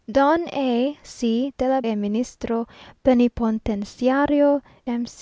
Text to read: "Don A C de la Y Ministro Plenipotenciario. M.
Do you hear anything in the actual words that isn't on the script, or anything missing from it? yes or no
no